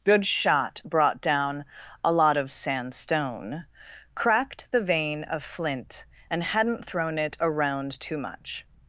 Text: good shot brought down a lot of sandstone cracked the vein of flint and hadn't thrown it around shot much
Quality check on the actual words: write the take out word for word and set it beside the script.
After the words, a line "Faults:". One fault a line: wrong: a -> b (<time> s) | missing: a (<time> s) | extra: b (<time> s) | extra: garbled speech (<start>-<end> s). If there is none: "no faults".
good shot brought down a lot of sandstone cracked the vein of flint and hadn't thrown it around too much
Faults:
wrong: shot -> too (8.0 s)